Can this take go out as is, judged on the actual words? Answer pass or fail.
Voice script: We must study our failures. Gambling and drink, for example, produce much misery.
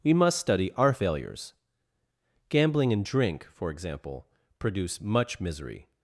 pass